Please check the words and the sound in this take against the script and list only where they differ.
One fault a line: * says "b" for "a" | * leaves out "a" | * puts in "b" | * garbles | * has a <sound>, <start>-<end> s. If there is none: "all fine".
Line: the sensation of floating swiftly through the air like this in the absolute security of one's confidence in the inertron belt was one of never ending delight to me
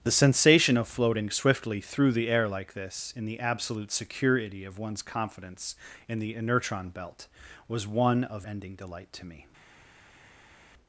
* leaves out "never"